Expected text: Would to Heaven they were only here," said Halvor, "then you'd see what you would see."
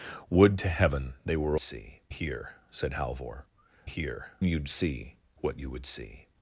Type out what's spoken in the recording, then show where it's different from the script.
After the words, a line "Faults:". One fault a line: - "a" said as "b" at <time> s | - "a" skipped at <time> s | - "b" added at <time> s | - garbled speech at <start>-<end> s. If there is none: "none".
Would to Heaven they were see here," said Halvor, "here you'd see what you would see."
Faults:
- "only" said as "see" at 1.6 s
- "then" said as "here" at 3.8 s